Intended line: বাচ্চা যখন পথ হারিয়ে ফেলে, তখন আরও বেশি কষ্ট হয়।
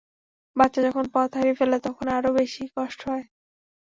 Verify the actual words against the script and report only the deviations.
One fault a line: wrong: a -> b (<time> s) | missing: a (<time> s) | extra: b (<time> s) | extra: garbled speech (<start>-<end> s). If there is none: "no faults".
no faults